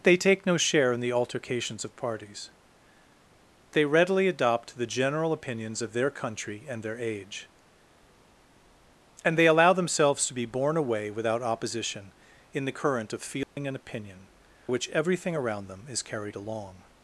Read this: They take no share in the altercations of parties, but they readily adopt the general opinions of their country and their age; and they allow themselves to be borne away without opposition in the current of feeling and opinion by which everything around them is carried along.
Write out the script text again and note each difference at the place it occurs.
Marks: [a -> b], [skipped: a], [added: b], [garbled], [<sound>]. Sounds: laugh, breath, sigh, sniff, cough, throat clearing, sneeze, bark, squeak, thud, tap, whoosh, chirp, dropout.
They take no share in the altercations of parties, [skipped: but] they readily adopt the general opinions of their country and their age; and they allow themselves to be borne away without opposition in the current of feeling [dropout] and opinion [skipped: by] which everything around them is carried along.